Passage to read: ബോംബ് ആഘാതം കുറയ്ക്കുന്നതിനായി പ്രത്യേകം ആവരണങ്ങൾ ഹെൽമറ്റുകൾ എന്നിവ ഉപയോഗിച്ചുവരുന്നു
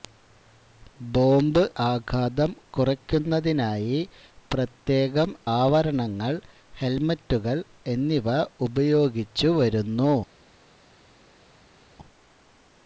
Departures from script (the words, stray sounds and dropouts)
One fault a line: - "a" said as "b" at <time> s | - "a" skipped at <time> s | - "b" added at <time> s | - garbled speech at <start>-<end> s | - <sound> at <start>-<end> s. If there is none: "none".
none